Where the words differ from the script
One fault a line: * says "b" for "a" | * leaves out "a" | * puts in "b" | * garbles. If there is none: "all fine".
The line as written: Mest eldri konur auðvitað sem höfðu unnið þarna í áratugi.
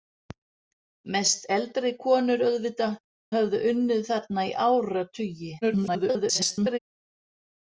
* leaves out "sem"
* garbles